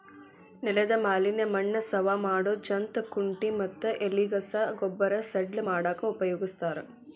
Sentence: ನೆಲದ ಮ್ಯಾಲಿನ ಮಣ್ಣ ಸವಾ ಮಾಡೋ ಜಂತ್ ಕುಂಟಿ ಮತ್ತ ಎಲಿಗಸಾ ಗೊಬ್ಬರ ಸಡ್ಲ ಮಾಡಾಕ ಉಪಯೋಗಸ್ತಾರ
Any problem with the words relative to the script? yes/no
no